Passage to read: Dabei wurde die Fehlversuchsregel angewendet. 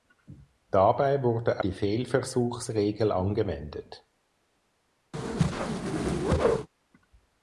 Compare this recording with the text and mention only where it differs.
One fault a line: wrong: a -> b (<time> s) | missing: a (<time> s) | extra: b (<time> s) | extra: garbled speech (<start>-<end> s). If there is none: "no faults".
no faults